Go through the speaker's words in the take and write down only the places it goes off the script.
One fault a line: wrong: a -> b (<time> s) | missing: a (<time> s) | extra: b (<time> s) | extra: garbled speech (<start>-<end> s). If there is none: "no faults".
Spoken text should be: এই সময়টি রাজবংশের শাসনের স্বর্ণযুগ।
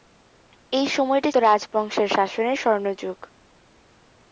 no faults